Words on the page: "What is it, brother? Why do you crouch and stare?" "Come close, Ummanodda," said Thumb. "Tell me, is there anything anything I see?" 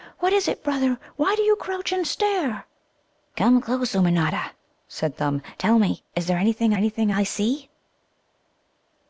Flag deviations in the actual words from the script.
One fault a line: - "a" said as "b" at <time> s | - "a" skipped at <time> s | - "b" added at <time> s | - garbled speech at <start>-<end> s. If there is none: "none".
none